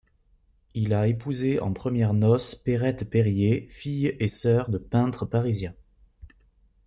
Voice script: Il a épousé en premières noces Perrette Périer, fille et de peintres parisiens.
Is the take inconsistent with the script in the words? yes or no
yes